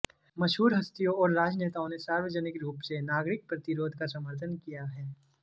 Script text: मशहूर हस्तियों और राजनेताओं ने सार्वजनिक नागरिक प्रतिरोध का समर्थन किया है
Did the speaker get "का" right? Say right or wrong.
right